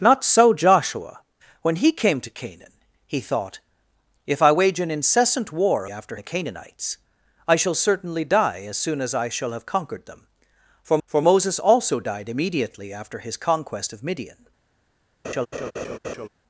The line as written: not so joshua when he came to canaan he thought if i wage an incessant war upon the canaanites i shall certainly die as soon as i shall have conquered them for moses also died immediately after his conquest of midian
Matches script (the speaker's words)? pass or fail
fail